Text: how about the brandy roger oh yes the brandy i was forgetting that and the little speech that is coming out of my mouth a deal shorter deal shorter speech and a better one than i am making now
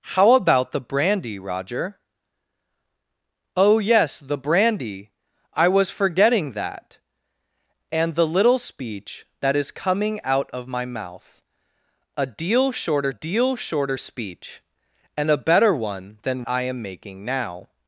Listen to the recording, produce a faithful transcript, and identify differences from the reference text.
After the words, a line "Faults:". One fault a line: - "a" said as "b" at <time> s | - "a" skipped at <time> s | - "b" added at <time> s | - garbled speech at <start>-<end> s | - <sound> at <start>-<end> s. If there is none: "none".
how about the brandy roger oh yes the brandy i was forgetting that and the little speech that is coming out of my mouth a deal shorter deal shorter speech and a better one than i am making now
Faults:
none